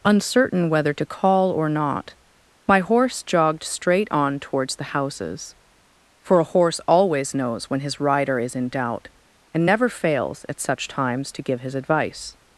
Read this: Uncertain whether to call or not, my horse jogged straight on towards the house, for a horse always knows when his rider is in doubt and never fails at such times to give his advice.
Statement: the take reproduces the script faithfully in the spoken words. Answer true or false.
false